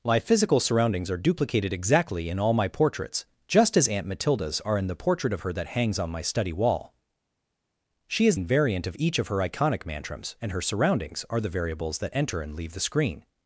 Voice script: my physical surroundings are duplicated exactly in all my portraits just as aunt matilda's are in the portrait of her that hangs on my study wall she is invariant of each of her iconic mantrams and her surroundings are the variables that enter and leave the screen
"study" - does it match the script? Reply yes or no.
yes